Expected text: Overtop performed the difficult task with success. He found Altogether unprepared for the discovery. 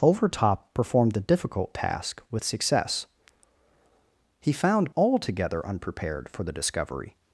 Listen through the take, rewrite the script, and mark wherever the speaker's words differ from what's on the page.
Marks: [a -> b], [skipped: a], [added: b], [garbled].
Overtop performed the difficult task with success. He found Altogether unprepared for the discovery.